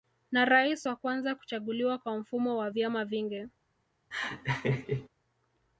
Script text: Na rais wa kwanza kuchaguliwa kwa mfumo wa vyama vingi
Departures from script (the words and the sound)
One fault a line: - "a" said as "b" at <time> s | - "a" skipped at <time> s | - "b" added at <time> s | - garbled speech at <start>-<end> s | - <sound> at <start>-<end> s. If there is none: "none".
- laugh at 4.1-5.1 s